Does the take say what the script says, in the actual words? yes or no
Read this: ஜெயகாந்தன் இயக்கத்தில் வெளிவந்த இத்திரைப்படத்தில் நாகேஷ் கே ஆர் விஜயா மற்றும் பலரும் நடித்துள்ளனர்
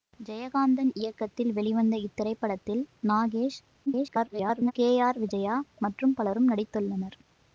no